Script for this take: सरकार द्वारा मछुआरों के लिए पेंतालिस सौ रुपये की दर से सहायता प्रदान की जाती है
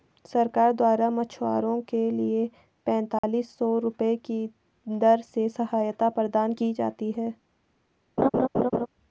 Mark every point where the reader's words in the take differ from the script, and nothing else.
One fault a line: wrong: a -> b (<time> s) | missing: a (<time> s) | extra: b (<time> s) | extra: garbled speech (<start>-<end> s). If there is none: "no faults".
no faults